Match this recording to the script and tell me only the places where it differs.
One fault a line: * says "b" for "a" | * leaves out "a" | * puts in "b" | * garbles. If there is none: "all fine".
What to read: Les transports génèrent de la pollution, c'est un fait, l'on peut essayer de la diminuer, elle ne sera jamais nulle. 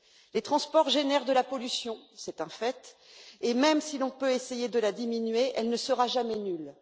* puts in "et même si"